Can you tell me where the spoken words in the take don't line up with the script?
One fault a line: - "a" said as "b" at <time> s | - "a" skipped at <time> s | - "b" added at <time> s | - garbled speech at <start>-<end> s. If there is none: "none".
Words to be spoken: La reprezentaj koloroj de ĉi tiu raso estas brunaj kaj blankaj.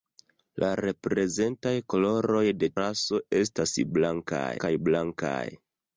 - "ĉi tiu" skipped at 2.7 s
- "brunaj" said as "blankaj" at 4.0 s